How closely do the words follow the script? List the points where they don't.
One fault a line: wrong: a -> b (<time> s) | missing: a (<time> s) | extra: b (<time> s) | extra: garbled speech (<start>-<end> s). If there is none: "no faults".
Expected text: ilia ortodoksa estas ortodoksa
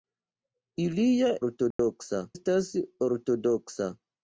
no faults